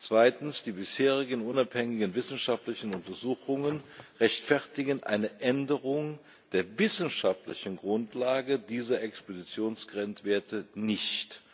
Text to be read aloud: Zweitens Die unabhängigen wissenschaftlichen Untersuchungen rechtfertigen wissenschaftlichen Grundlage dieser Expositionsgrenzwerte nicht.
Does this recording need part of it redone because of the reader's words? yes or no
yes